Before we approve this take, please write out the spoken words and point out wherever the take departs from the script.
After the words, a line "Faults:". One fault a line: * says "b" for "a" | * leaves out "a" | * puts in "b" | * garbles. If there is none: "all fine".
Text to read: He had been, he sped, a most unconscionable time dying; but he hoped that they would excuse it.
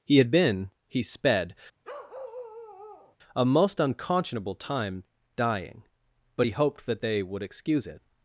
He had been, he sped, a most unconscionable time dying; but he hoped that they would excuse it.
Faults:
all fine